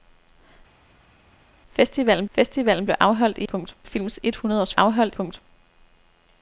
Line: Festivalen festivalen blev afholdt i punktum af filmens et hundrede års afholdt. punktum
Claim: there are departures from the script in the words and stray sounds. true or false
false